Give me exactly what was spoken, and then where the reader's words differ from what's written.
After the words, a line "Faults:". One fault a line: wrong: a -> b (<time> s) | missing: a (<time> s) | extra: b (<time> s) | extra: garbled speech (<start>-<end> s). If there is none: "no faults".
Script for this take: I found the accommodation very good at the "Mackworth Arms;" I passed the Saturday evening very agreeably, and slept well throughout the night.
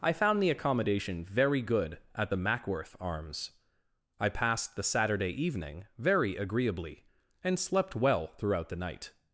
I found the accommodation very good at the "Mackworth Arms;" I passed the Saturday evening very agreeably, and slept well throughout the night.
Faults:
no faults